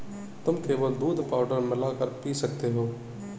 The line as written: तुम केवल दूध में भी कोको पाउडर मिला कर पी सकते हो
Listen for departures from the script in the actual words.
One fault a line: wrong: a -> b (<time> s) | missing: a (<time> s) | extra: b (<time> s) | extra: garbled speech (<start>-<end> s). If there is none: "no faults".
missing: में भी कोको (1.2 s)